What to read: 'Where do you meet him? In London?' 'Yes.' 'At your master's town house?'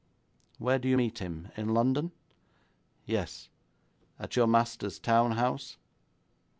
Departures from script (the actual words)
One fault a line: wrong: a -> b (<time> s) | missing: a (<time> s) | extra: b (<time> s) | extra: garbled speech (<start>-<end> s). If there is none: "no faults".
no faults